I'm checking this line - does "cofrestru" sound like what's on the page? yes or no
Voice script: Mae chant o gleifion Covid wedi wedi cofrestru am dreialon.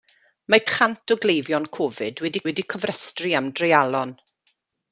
yes